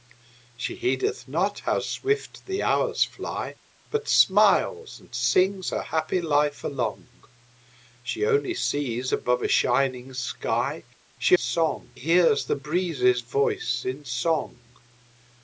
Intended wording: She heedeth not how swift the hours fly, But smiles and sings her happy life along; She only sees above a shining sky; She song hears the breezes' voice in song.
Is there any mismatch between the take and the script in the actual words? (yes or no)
no